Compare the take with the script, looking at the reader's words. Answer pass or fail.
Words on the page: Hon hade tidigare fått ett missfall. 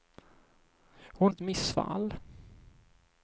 fail